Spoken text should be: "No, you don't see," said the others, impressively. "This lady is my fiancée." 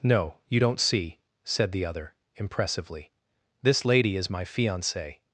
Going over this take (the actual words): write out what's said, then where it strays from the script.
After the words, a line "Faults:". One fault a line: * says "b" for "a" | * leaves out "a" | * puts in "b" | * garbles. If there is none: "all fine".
"No, you don't see," said the other, impressively. "This lady is my fiancée."
Faults:
* says "other" for "others"